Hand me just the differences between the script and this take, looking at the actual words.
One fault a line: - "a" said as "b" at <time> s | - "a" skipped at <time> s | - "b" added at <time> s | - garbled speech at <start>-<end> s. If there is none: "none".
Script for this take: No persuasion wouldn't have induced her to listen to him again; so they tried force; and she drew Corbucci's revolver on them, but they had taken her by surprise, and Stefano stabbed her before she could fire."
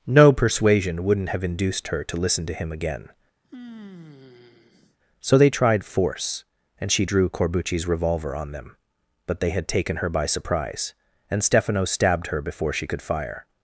none